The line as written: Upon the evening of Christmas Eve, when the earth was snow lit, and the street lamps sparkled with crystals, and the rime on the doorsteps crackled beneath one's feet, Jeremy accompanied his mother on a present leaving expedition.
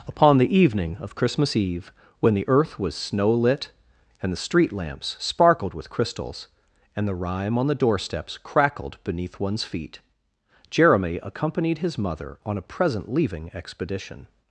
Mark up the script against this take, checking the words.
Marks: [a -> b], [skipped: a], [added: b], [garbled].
Upon the evening of Christmas Eve, when the earth was snow lit, and the street lamps sparkled with crystals, and the rime on the doorsteps crackled beneath one's feet, Jeremy accompanied his mother on a present leaving expedition.